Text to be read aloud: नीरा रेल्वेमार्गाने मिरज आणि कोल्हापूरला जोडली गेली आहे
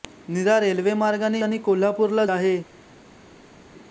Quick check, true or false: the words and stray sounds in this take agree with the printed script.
false